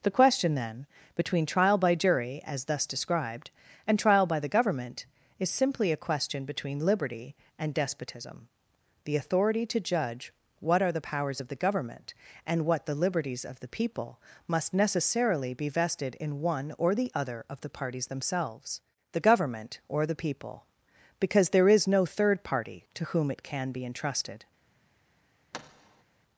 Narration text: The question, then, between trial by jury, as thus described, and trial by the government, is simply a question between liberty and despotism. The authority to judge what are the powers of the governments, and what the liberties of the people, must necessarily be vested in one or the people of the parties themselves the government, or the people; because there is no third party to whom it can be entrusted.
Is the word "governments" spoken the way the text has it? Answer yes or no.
no